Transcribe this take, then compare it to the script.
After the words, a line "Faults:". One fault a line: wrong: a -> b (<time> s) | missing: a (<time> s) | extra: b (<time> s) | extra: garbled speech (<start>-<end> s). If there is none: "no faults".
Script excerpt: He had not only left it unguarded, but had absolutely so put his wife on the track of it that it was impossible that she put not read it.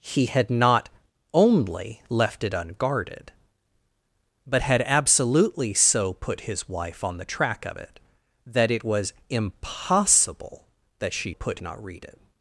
He had not only left it unguarded, but had absolutely so put his wife on the track of it that it was impossible that she put not read it.
Faults:
no faults